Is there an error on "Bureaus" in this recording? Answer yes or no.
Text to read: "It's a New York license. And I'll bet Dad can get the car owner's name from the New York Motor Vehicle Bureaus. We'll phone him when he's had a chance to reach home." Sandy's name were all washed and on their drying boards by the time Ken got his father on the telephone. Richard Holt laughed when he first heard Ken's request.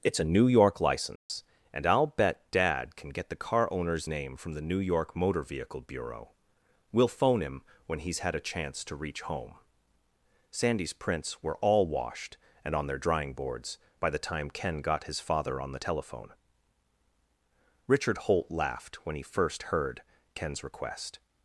yes